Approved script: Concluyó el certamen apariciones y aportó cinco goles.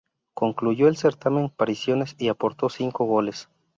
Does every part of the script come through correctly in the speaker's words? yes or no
yes